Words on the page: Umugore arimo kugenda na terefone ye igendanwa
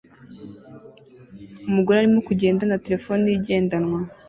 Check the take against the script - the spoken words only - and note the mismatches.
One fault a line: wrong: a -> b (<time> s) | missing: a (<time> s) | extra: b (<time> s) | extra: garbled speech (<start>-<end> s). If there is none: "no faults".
no faults